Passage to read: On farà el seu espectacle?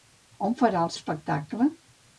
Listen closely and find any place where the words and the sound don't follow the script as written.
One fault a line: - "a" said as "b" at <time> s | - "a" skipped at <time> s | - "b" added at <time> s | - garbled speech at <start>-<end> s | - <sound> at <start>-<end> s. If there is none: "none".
- "seu" skipped at 0.9 s